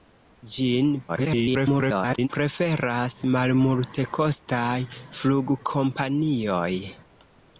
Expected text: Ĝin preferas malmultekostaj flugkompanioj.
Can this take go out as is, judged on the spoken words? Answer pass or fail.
fail